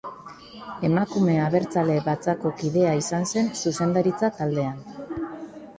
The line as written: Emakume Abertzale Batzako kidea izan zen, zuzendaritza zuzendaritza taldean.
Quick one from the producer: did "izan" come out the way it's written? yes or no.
yes